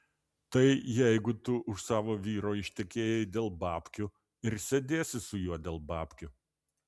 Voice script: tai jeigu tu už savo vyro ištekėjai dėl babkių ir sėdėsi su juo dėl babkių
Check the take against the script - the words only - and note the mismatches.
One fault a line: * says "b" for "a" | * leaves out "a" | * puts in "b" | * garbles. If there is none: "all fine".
all fine